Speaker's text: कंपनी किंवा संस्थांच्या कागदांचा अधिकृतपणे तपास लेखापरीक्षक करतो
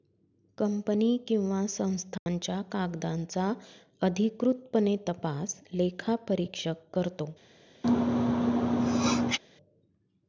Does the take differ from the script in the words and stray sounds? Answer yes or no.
yes